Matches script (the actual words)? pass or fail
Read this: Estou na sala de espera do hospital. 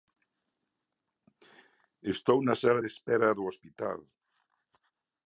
pass